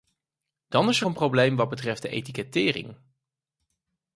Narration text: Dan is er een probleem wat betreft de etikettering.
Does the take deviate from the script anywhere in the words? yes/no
no